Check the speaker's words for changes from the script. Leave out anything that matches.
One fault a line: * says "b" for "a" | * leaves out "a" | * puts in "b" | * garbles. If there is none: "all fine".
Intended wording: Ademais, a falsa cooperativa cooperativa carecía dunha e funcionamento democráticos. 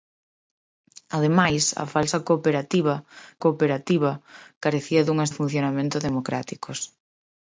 all fine